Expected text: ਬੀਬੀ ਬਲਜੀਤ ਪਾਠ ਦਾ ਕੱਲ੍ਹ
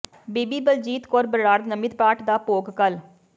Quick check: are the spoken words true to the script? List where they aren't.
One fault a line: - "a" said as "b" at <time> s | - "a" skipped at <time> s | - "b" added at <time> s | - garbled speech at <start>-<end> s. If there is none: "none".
- "ਕੌਰ ਬਰਾੜ ਨਮਿਤ" added at 1.1 s
- "ਭੋਗ" added at 2.4 s